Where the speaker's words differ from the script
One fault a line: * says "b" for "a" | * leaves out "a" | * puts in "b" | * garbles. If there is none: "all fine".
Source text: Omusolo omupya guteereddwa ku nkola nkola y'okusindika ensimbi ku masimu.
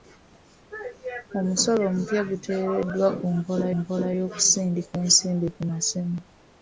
all fine